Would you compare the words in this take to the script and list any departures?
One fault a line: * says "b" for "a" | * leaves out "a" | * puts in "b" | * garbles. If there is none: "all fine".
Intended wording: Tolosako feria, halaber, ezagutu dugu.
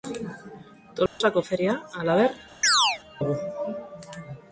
* leaves out "ezagutu"